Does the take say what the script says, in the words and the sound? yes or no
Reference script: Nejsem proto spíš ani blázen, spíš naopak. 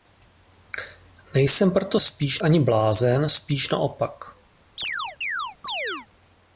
no